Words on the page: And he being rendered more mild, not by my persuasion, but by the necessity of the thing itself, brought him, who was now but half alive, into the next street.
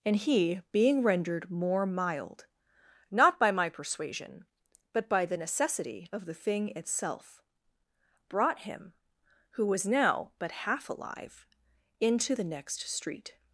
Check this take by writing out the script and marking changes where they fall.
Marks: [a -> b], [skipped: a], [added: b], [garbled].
And he being rendered more mild, not by my persuasion, but by the necessity of the thing itself, brought him, who was now but half alive, into the next street.